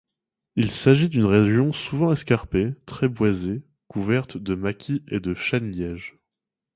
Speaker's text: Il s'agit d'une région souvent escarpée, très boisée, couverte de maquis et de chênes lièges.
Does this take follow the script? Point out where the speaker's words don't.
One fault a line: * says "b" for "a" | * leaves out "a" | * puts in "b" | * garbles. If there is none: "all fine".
all fine